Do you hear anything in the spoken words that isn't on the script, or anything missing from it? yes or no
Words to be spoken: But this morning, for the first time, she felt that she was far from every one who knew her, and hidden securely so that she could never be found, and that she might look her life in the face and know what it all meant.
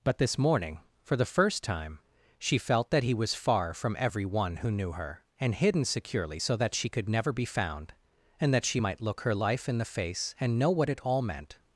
yes